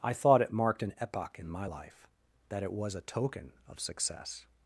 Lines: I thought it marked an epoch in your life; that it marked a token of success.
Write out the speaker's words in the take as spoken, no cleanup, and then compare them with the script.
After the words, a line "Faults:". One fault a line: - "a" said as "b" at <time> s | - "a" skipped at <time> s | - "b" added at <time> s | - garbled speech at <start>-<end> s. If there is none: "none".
I thought it marked an epoch in my life; that it was a token of success.
Faults:
- "your" said as "my" at 1.5 s
- "marked" said as "was" at 2.7 s